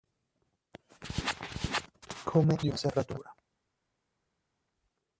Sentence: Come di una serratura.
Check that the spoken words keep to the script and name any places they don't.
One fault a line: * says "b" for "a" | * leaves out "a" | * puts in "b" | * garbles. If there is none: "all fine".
all fine